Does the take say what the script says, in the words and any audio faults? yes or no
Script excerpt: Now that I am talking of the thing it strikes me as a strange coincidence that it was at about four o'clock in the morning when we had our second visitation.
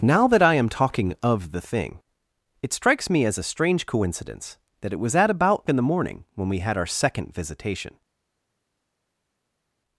no